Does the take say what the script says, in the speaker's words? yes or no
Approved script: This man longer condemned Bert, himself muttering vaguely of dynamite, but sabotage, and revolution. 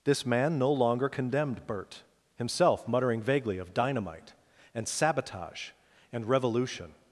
no